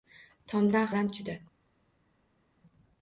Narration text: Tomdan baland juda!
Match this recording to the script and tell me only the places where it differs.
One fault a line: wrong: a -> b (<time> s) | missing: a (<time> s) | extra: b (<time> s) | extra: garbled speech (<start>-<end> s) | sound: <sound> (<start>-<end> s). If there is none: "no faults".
no faults